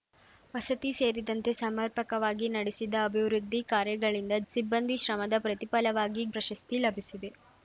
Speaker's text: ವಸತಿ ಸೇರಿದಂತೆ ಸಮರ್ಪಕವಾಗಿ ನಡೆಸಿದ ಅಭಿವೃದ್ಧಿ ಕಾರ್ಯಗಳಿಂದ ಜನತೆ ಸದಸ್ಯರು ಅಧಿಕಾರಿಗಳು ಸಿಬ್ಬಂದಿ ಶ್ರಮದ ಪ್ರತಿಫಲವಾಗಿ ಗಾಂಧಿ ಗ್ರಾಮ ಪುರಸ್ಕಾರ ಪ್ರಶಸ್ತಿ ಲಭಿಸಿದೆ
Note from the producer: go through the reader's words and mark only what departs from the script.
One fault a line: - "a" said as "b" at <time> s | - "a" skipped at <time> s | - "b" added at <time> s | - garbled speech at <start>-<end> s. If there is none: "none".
- "ಜನತೆ ಸದಸ್ಯರು ಅಧಿಕಾರಿಗಳು" skipped at 4.3 s
- "ಗಾಂಧಿ ಗ್ರಾಮ ಪುರಸ್ಕಾರ" skipped at 6.2 s